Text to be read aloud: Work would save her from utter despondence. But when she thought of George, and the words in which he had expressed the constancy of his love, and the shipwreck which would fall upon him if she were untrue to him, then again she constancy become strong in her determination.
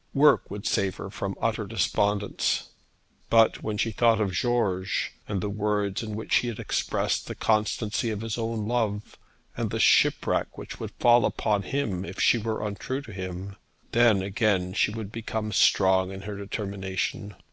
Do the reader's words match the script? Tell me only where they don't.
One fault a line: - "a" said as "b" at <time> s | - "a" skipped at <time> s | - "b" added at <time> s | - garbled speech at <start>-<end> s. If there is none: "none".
- "own" added at 8.4 s
- "constancy" said as "would" at 14.9 s